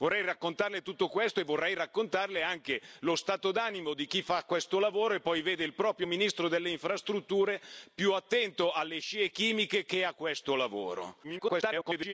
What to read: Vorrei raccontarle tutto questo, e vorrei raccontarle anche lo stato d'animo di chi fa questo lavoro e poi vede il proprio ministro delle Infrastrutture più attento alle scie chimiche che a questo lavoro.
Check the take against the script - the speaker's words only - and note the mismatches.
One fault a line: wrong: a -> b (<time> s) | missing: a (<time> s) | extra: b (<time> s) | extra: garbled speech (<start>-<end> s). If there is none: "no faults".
extra: garbled speech (11.2-12.1 s)